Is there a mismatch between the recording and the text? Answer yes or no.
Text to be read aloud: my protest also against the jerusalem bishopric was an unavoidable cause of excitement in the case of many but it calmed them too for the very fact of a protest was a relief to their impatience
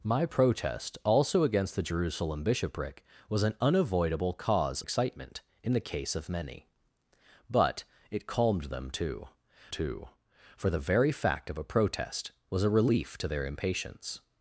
yes